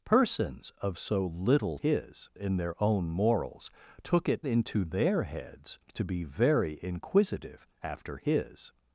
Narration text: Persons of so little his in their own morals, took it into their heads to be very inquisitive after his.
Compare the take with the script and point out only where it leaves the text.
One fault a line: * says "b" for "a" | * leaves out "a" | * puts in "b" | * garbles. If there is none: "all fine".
all fine